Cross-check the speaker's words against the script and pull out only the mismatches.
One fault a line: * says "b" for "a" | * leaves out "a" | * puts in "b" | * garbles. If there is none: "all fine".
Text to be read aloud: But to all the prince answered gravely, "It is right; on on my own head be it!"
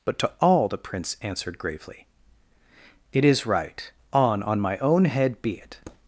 all fine